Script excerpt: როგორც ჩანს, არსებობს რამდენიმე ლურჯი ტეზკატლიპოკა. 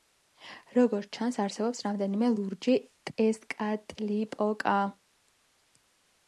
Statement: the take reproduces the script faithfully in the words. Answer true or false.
true